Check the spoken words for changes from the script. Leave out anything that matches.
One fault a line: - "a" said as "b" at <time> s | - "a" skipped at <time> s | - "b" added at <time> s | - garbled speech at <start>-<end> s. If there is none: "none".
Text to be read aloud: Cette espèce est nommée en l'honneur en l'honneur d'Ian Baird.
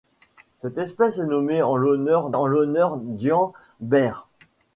none